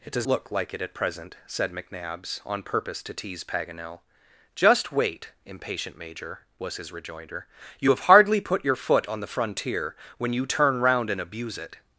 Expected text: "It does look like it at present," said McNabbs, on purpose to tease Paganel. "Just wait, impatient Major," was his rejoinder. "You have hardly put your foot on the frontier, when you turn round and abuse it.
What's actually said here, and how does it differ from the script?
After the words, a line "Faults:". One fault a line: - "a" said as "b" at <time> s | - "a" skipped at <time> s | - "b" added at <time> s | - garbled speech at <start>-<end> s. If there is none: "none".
"It does look like it at present," said McNabbs, on purpose to tease Paganel. "Just wait, impatient Major," was his rejoinder. "You have hardly put your foot on the frontier, when you turn round and abuse it.
Faults:
none